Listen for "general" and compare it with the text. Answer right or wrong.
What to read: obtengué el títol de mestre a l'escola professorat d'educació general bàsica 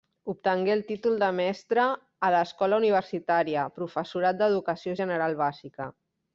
right